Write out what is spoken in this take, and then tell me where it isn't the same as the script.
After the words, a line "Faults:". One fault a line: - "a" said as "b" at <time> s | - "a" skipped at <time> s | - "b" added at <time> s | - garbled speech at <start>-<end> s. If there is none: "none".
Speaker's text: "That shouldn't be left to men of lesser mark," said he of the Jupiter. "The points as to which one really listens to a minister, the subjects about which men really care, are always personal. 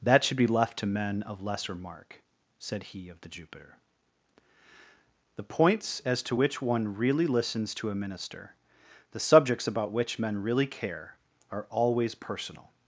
"That should be left to men of lesser mark," said he of the Jupiter. "The points as to which one really listens to a minister, the subjects about which men really care, are always personal.
Faults:
- "shouldn't" said as "should" at 0.2 s